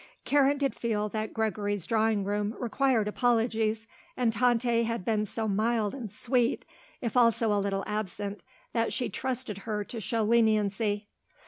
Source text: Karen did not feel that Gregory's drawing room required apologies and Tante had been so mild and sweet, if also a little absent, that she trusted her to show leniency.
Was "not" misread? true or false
true